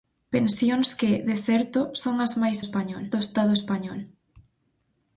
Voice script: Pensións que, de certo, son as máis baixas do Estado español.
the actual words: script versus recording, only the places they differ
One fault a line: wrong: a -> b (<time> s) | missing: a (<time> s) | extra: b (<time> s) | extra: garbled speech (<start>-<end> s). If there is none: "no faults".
wrong: baixas -> español (2.6 s)